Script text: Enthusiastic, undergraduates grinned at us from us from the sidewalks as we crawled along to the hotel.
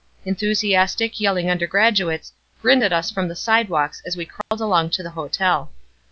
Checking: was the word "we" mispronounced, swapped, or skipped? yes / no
no